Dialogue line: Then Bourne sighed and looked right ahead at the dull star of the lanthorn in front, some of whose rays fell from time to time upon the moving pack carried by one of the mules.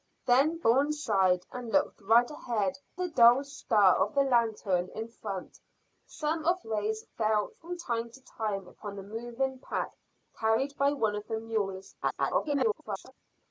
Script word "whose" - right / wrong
wrong